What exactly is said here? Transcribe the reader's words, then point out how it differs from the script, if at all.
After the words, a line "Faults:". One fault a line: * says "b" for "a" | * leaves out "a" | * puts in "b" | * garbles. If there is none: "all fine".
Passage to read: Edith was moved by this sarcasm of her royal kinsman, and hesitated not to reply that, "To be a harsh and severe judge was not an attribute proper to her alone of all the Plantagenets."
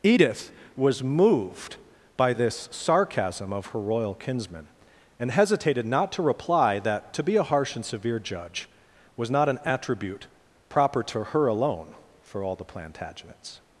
Edith was moved by this sarcasm of her royal kinsman, and hesitated not to reply that, "To be a harsh and severe judge was not an attribute proper to her alone for all the Plantagenets."
Faults:
* says "for" for "of"